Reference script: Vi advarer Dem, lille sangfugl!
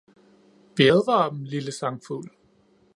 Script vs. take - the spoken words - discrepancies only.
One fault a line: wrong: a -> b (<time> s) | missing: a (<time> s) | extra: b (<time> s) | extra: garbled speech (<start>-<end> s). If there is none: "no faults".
no faults